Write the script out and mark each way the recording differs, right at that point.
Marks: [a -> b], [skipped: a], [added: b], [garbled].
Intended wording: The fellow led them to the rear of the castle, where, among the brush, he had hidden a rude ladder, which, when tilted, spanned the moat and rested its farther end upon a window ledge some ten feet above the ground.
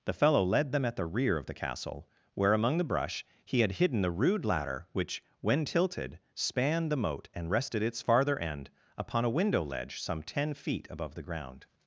The fellow led them [to -> at] the rear of the castle, where, among the brush, he had hidden [a -> the] rude ladder, which, when tilted, spanned the moat and rested its farther end upon a window ledge some ten feet above the ground.